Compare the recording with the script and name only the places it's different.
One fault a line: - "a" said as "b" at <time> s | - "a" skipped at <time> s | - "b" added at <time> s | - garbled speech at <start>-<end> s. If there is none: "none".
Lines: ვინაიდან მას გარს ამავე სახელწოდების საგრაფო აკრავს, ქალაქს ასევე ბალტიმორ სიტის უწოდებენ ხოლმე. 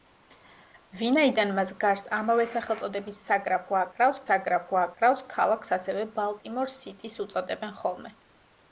- "საგრაფო აკრავს" added at 4.3 s